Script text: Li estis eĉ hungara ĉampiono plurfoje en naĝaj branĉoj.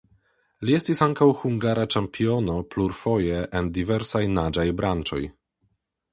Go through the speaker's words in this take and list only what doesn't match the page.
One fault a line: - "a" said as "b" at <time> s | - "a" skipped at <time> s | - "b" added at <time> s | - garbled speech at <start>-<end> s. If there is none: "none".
- "eĉ" said as "ankaŭ" at 1.1 s
- "diversaj" added at 3.8 s